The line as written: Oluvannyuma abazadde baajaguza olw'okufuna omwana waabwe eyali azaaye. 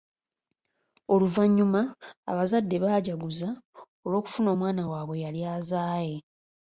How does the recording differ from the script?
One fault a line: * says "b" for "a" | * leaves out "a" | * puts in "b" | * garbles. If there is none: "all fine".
all fine